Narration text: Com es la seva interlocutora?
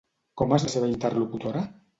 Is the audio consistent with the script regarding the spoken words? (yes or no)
yes